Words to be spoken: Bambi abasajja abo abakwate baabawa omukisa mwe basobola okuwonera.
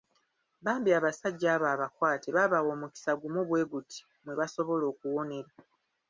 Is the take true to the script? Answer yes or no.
no